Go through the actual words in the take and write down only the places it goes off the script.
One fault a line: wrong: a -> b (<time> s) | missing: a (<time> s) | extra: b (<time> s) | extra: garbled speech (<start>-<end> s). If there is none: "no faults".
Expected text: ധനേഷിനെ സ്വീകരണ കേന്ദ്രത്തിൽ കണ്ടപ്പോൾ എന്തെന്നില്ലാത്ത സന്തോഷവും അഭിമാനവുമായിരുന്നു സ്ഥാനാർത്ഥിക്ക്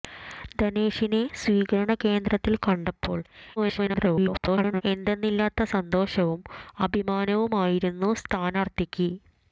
extra: garbled speech (3.6-4.8 s)